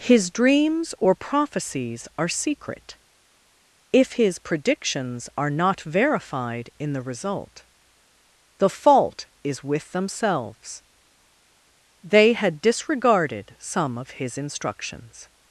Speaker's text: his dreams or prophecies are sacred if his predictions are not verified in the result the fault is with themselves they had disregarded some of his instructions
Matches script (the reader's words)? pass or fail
fail